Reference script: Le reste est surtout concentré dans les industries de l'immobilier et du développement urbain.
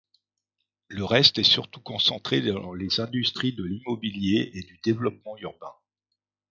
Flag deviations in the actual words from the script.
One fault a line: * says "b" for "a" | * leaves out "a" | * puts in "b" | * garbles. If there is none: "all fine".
all fine